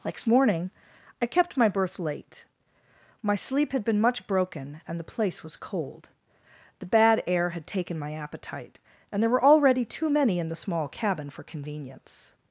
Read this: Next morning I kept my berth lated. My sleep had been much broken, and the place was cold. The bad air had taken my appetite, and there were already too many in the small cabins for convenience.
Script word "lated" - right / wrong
wrong